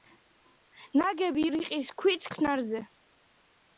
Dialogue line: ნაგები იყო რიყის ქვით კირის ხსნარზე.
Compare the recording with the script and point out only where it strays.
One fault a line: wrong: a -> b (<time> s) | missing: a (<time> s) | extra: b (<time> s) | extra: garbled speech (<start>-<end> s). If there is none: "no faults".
missing: იყო (1.4 s)
missing: კირის (2.3 s)